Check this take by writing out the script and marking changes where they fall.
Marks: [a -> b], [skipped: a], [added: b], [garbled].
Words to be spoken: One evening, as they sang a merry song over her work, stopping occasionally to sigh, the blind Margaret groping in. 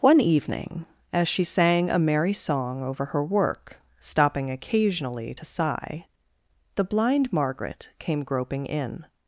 One evening, as [they -> she] sang a merry song over her work, stopping occasionally to sigh, the blind Margaret [added: came] groping in.